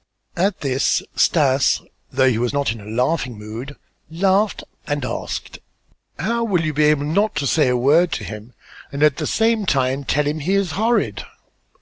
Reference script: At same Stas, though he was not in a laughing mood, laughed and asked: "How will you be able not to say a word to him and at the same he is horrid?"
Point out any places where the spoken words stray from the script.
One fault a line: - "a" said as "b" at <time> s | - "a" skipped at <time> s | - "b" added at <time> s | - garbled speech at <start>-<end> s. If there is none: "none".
- "same" said as "this" at 0.6 s
- "time tell him" added at 9.6 s